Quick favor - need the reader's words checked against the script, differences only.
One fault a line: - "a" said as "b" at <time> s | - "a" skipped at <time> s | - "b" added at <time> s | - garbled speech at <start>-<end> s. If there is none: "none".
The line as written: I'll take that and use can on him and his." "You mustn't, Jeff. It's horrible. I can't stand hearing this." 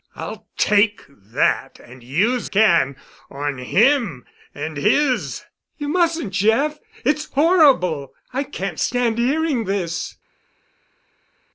none